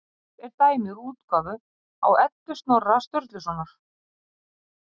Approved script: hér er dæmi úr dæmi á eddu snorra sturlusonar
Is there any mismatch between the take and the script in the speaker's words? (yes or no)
yes